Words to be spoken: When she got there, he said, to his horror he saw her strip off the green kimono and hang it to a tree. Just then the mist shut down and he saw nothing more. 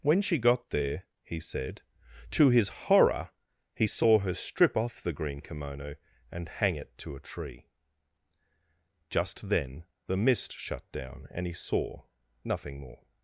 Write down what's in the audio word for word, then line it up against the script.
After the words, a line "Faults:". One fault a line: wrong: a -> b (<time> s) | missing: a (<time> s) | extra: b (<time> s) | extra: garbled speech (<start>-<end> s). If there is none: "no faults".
When she got there, he said, to his horror he saw her strip off the green kimono and hang it to a tree. Just then the mist shut down and he saw nothing more.
Faults:
no faults